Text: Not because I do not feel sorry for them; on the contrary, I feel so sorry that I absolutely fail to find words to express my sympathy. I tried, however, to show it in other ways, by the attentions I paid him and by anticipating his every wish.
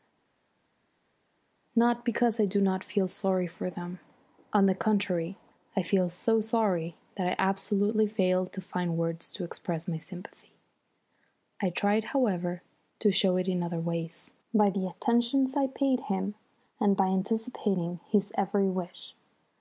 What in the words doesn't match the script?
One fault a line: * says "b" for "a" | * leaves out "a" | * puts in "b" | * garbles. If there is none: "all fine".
all fine